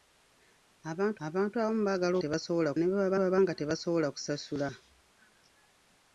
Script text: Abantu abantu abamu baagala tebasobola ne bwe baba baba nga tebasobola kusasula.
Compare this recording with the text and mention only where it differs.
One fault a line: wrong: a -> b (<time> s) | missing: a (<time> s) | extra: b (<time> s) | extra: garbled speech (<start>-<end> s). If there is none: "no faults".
no faults